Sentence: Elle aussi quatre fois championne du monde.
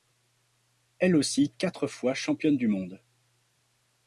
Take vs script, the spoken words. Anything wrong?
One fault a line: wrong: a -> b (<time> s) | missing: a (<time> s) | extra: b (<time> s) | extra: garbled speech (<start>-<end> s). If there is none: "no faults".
no faults